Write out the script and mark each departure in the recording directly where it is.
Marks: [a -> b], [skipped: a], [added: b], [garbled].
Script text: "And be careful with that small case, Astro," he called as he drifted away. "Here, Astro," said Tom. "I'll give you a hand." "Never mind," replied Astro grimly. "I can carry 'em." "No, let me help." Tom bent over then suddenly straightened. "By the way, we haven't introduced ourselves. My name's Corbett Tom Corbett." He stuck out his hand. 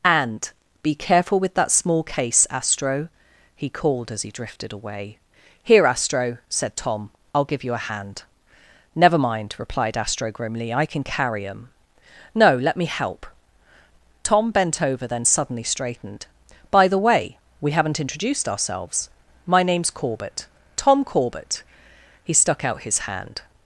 "And be careful with that small case, Astro," he called as he drifted away. "Here, Astro," said Tom. "I'll give you a hand." "Never mind," replied Astro grimly. "I can carry 'em." "No, let me help." Tom bent over then suddenly straightened. "By the way, we haven't introduced ourselves. My name's Corbett Tom Corbett." He stuck out his hand.